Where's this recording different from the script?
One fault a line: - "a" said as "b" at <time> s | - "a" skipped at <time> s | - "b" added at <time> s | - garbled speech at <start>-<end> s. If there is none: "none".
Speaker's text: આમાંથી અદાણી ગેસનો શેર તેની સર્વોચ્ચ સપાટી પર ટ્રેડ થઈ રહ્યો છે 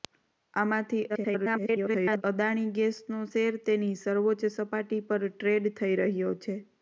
- garbled speech at 1.1-2.2 s